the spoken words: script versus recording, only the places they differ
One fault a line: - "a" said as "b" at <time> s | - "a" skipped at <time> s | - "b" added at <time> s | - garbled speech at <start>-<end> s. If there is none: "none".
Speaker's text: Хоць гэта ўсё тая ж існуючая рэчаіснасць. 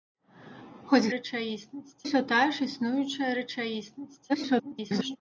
- "гэта" said as "рэчаіснасць" at 1.2 s
- garbled speech at 4.3-5.2 s